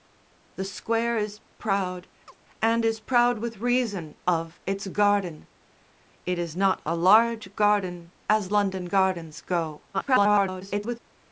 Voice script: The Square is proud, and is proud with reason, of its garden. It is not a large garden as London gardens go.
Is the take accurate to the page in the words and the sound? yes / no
no